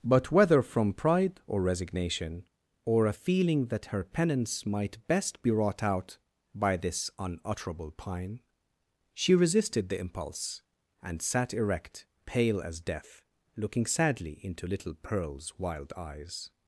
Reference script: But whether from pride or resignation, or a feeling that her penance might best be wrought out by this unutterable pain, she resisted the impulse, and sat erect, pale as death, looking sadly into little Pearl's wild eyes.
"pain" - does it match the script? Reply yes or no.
no